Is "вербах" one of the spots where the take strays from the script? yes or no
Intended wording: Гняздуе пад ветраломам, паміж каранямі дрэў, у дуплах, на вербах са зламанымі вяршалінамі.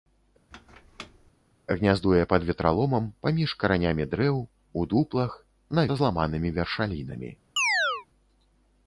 yes